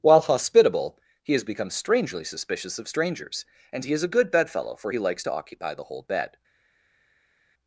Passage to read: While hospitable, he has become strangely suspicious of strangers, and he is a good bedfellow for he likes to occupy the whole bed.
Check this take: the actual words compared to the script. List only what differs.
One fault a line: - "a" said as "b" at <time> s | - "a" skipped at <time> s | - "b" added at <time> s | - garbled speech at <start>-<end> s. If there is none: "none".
none